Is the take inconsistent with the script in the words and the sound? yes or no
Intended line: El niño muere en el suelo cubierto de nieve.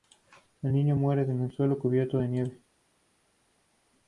no